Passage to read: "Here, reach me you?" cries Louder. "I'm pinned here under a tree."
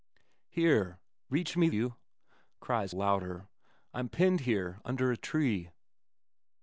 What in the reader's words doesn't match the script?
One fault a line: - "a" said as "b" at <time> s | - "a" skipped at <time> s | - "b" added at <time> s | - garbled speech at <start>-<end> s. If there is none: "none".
none